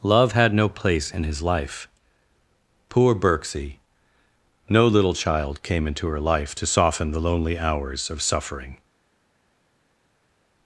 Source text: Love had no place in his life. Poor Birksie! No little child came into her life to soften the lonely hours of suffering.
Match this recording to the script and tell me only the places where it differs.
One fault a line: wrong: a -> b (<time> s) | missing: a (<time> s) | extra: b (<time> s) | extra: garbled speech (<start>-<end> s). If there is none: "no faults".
no faults